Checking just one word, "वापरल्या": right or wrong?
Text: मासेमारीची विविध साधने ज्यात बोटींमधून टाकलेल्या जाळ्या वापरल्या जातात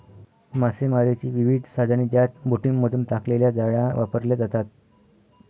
right